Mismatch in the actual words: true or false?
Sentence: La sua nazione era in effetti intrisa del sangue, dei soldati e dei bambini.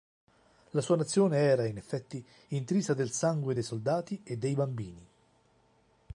false